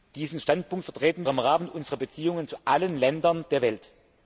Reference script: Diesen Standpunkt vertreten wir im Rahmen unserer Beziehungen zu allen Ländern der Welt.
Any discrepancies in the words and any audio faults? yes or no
yes